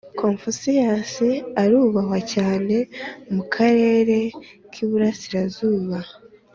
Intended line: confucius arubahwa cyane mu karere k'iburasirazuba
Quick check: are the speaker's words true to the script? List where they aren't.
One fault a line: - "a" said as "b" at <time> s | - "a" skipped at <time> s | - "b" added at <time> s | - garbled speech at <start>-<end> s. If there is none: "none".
none